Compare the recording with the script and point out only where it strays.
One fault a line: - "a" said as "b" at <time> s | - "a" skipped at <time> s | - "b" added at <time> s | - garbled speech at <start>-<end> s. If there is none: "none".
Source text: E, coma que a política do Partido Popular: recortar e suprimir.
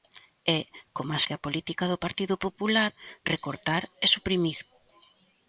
none